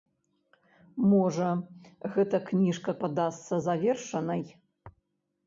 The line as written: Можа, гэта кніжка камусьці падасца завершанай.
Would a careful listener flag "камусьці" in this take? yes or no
yes